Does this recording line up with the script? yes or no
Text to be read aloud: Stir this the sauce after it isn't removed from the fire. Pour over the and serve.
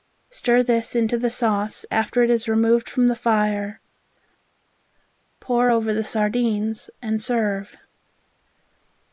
no